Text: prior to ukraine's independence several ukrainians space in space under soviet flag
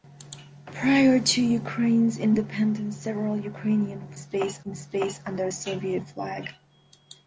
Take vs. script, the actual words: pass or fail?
pass